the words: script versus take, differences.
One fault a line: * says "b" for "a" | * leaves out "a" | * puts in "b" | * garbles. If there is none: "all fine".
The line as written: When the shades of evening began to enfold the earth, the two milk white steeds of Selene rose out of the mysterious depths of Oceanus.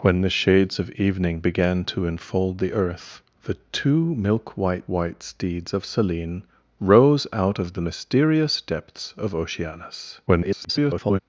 * puts in "white"
* garbles